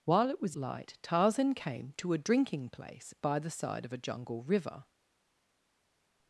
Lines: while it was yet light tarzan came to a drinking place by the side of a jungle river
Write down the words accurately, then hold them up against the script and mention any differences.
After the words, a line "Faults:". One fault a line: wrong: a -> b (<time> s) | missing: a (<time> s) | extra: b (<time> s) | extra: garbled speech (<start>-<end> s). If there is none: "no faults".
while it was light tarzan came to a drinking place by the side of a jungle river
Faults:
missing: yet (0.6 s)